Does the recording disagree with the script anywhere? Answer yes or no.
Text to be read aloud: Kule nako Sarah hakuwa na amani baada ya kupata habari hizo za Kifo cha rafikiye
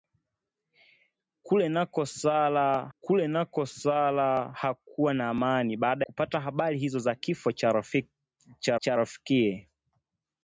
yes